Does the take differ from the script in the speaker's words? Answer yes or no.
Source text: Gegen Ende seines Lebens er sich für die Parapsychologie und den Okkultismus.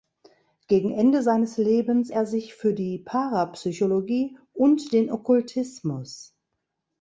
no